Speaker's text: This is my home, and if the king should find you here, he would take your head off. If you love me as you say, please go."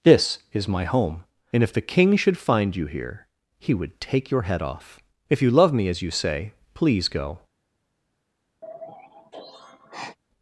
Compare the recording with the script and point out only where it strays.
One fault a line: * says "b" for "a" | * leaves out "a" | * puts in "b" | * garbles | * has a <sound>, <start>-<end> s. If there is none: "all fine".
* has a sigh, 8.6-10.2 s